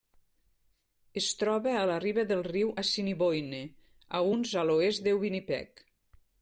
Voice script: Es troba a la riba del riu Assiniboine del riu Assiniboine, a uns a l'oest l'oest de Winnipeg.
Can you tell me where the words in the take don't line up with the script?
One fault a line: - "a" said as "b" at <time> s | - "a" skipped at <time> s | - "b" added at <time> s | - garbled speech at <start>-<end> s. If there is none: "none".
- "del riu Assiniboine" skipped at 3.6 s
- "l'oest" skipped at 5.1 s